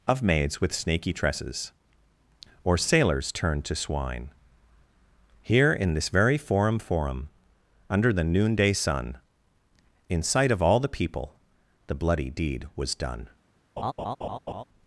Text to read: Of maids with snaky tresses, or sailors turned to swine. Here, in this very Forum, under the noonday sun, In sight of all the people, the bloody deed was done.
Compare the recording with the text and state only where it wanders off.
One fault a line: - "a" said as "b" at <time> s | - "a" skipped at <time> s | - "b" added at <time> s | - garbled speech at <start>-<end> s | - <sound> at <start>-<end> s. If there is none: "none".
- "Forum" added at 6.8 s
- laugh at 13.8-14.6 s